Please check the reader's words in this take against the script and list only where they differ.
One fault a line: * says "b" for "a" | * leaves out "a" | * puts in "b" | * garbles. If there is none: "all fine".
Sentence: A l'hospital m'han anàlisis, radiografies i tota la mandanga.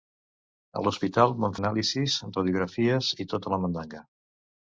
all fine